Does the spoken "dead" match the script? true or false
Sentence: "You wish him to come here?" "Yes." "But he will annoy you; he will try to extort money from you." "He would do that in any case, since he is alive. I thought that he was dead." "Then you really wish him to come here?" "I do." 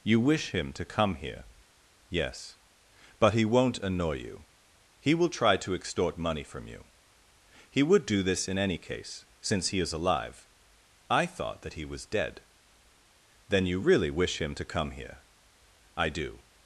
true